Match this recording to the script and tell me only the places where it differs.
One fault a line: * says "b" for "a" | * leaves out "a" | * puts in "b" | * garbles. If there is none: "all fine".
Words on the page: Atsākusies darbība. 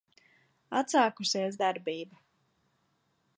all fine